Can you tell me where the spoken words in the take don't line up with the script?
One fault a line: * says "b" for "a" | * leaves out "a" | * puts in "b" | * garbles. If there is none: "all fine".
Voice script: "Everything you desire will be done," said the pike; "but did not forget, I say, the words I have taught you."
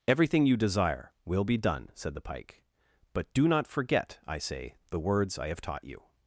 * says "do" for "did"